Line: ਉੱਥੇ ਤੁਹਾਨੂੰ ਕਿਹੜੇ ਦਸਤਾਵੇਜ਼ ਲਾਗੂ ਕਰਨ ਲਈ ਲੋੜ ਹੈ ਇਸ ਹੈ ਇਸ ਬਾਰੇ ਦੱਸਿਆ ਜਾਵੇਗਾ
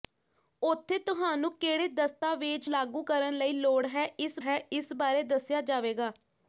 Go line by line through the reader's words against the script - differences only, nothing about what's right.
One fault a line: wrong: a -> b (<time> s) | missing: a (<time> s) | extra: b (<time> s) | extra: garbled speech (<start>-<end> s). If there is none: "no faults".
no faults